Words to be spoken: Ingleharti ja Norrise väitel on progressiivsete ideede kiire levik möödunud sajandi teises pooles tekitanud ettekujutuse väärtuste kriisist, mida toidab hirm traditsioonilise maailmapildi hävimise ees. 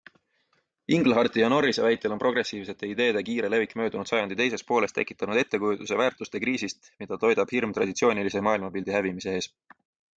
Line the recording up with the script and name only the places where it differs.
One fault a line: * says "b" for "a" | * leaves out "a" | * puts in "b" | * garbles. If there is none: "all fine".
all fine